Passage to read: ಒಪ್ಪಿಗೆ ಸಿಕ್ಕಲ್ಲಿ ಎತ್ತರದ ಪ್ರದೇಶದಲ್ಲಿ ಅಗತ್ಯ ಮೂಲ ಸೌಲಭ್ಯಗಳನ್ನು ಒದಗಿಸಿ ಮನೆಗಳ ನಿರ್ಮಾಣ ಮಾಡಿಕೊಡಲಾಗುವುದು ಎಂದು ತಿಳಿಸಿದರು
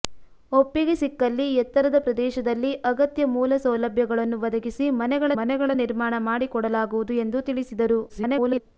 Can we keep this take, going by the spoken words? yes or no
no